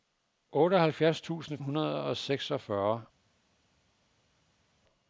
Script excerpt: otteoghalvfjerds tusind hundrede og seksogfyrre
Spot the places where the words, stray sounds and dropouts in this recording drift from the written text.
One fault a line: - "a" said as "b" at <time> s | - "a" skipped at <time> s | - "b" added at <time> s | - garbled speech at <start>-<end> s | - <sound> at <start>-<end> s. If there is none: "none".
none